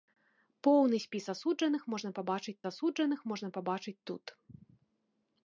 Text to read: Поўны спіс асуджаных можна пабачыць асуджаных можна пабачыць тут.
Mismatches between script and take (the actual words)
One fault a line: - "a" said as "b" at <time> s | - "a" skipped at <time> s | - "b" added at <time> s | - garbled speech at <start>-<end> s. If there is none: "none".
none